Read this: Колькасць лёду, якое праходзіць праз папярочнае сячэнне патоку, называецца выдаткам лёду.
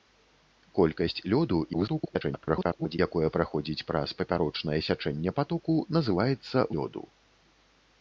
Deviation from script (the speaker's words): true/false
true